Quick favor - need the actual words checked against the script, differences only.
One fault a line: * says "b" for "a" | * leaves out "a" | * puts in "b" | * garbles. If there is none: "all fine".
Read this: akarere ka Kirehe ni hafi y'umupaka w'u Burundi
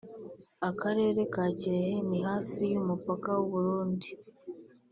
all fine